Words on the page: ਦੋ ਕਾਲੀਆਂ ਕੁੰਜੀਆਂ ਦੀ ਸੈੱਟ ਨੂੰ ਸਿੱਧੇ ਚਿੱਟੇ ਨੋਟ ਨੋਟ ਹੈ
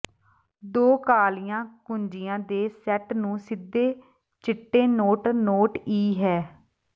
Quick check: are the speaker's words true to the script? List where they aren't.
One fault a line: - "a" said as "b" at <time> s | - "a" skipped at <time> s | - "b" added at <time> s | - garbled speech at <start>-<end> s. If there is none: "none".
- "ਦੀ" said as "ਦੇ" at 2.4 s
- "ਈ" added at 5.9 s